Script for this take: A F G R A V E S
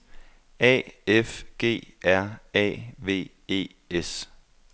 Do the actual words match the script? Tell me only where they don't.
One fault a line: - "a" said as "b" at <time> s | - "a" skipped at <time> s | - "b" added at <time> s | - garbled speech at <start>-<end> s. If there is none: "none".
none